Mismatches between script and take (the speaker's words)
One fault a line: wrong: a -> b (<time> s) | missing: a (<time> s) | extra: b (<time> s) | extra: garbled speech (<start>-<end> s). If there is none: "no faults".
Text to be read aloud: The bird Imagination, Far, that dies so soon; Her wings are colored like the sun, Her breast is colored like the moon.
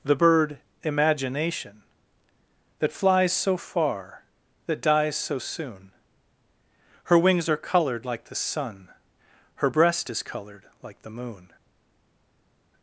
extra: That flies so (2.8 s)